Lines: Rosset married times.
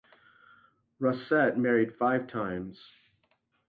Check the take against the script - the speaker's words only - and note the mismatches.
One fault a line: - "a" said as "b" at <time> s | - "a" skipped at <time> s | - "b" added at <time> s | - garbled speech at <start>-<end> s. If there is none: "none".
- "five" added at 2.0 s